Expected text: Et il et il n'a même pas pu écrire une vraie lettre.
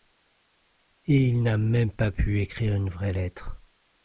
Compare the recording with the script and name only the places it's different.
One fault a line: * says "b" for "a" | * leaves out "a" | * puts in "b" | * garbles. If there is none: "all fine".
* leaves out "et il"